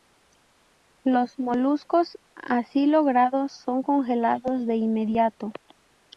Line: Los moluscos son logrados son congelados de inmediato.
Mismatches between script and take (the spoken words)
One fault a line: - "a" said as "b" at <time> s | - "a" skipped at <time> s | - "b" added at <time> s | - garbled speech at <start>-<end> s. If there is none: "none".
- "son" said as "así" at 2.3 s